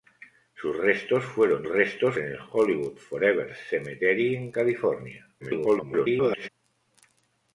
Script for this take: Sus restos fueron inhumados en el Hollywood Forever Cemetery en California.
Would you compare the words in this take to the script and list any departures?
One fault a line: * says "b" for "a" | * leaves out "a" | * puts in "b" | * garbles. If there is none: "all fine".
* says "restos" for "inhumados"
* garbles